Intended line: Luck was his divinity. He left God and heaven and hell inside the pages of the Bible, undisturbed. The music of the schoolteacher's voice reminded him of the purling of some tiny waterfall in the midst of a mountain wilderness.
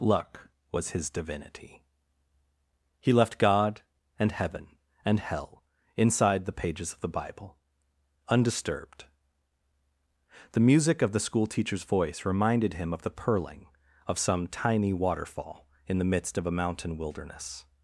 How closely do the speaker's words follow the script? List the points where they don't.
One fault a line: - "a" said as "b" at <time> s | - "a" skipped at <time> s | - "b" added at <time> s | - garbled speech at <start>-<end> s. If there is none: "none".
none